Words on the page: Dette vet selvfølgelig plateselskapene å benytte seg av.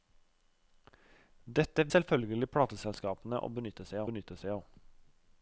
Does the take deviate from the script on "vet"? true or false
true